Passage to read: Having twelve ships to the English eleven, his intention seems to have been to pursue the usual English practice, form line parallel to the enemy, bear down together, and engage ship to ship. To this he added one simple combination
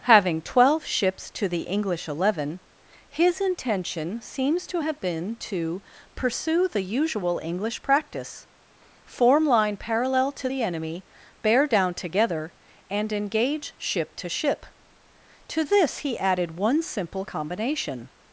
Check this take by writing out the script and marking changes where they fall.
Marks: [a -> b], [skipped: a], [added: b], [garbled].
Having twelve ships to the English eleven, his intention seems to have been to pursue the usual English practice, form line parallel to the enemy, bear down together, and engage ship to ship. To this he added one simple combination